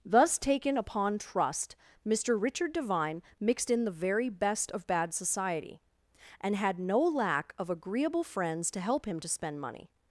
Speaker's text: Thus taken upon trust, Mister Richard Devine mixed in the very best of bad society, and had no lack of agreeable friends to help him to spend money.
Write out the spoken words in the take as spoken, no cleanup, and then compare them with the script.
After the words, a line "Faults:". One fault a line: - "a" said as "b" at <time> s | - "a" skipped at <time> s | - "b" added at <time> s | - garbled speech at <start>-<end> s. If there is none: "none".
Thus taken upon trust, Mister Richard Devine mixed in the very best of bad society, and had no lack of agreeable friends to help him to spend money.
Faults:
none